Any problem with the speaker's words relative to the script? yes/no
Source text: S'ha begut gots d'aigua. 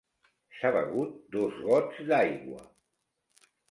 yes